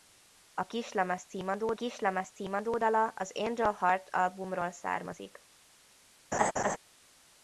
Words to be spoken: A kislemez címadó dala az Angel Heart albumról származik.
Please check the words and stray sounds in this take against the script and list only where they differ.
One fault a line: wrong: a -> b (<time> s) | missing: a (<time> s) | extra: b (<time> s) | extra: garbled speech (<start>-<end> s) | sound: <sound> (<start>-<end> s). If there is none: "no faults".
extra: kislemez címadó (1.7 s)
sound: laugh (6.3-6.8 s)